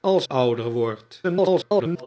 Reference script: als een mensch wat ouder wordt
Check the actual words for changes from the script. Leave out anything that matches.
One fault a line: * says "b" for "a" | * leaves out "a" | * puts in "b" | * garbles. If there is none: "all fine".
* leaves out "een mensch wat"
* garbles